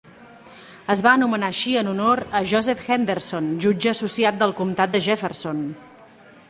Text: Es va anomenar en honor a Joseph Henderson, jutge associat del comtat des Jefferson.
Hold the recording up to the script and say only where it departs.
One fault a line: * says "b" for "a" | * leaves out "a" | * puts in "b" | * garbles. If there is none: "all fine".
* puts in "així"
* says "de" for "des"